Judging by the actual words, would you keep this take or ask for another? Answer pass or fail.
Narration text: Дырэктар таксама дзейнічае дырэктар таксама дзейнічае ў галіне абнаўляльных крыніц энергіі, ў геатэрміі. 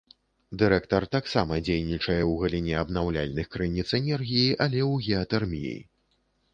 fail